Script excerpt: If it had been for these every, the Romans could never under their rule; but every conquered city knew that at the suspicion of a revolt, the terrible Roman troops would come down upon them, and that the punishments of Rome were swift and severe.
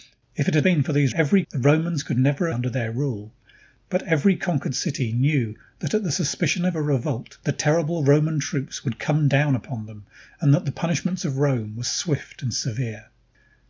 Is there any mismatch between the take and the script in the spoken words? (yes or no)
no